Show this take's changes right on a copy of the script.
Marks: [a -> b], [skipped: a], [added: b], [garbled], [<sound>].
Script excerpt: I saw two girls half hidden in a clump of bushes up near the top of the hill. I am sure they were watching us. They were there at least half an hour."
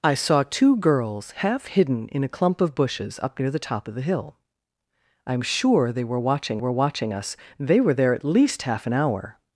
I saw two girls half hidden in a clump of bushes up near the top of the hill. I am sure they were watching [added: were watching] us. They were there at least half an hour."